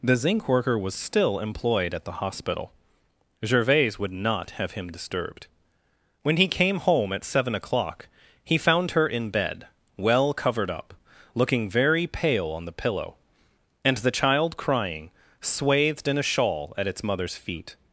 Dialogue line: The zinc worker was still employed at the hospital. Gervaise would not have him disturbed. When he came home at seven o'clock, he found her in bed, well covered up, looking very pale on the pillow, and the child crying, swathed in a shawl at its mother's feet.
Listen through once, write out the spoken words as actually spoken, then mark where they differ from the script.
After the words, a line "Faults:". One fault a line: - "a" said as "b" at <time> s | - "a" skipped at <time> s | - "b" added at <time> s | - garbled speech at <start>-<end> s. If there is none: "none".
The zinc worker was still employed at the hospital. Gervaise would not have him disturbed. When he came home at seven o'clock, he found her in bed, well covered up, looking very pale on the pillow, and the child crying, swathed in a shawl at its mother's feet.
Faults:
none